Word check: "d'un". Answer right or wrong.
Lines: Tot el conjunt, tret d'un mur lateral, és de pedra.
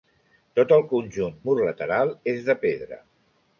wrong